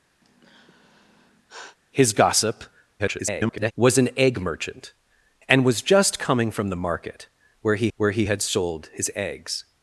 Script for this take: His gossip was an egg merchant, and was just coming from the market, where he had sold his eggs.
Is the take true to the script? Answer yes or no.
no